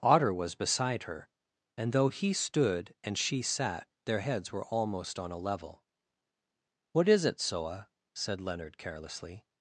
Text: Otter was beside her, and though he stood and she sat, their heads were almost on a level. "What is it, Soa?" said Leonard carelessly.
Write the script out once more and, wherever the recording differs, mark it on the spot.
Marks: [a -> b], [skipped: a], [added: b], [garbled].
Otter was beside her, and though he stood and she sat, their heads were almost on a level. "What is it, Soa?" said Leonard carelessly.